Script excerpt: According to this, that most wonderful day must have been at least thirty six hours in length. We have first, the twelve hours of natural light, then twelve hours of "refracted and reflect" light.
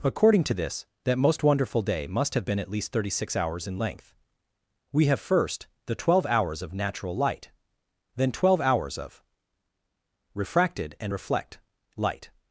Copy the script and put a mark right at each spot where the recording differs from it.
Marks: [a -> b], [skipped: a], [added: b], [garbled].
According to this, that most wonderful day must have been at least thirty six hours in length. We have first, the twelve hours of natural light, then twelve hours of "refracted and reflect" light.